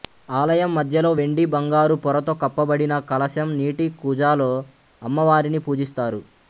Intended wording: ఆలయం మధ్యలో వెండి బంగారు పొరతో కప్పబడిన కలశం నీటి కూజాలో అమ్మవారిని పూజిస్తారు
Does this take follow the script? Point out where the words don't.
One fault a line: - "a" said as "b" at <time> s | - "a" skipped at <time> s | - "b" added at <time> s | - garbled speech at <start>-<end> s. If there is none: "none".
none